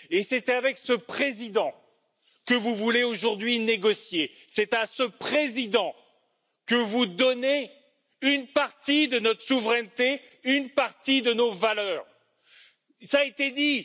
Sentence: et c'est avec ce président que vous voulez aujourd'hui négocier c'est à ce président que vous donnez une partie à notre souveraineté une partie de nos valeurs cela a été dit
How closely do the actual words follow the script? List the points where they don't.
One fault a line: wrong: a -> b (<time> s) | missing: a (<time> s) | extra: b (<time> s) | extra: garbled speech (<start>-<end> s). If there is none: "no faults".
wrong: à -> de (9.1 s)